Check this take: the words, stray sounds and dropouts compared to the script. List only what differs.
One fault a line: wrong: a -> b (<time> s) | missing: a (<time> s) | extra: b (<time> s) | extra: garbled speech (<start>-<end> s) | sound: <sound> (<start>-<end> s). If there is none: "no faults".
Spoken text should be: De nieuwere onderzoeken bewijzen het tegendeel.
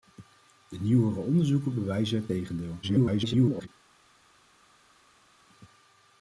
extra: garbled speech (2.8-3.7 s)